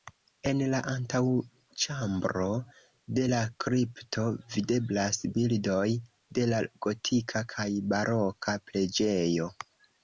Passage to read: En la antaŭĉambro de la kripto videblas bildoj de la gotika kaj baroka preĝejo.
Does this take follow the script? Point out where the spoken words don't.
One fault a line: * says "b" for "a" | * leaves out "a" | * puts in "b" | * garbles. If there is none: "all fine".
all fine